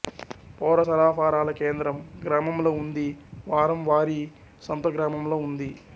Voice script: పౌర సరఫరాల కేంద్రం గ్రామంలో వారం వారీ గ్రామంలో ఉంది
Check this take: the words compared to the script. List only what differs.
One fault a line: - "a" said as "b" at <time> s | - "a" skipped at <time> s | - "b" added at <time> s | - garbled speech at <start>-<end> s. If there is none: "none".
- "ఉంది" added at 2.8 s
- "సంత" added at 4.6 s